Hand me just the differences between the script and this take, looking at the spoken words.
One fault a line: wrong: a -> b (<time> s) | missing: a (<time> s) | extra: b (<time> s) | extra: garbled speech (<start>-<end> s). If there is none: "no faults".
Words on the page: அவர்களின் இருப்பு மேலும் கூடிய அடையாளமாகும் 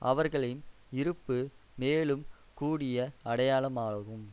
no faults